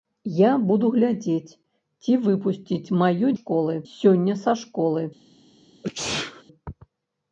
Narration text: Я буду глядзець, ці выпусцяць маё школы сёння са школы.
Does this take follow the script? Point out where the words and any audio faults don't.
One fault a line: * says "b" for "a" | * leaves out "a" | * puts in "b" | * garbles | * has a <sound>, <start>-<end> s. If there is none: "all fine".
* has a sneeze, 5.8-6.4 s